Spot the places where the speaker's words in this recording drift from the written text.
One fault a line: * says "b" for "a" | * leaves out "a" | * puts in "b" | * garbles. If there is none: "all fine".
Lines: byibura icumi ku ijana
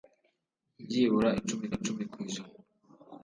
* puts in "icumi"